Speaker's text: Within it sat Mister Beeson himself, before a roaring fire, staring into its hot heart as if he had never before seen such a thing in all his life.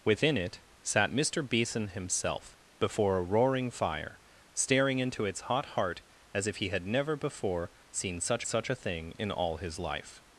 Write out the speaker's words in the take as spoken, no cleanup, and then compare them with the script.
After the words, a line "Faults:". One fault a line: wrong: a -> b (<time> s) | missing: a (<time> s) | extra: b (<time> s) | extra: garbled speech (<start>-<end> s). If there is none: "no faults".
Within it sat Mister Beeson himself, before a roaring fire, staring into its hot heart as if he had never before seen such such a thing in all his life.
Faults:
extra: such (8.4 s)